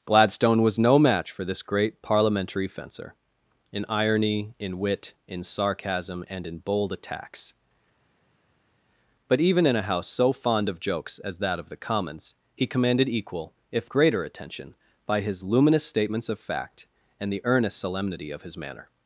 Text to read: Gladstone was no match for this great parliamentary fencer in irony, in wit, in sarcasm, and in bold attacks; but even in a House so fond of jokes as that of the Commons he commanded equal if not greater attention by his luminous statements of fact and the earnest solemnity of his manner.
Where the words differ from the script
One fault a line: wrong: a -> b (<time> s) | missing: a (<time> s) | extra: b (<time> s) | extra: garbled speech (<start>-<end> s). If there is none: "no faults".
missing: not (13.9 s)